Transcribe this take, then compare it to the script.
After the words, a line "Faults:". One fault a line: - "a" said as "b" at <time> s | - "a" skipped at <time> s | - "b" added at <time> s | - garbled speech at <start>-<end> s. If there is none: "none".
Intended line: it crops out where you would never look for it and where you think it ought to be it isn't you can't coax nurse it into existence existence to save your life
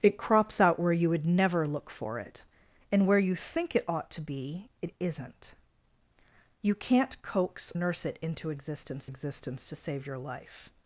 it crops out where you would never look for it and where you think it ought to be it isn't you can't coax nurse it into existence existence to save your life
Faults:
none